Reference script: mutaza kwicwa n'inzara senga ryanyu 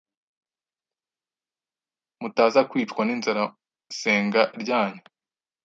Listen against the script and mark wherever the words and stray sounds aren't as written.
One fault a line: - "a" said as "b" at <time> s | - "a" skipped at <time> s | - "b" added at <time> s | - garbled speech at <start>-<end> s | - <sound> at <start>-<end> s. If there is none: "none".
none